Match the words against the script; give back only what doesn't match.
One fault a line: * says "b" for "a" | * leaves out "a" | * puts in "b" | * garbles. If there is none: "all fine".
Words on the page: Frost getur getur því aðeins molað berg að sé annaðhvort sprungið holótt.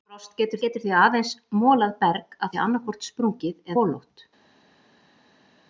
all fine